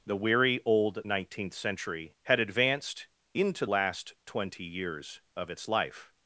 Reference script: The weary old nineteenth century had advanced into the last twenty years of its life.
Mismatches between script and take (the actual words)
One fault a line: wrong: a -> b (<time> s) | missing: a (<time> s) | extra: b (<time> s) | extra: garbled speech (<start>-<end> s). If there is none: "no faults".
missing: the (3.7 s)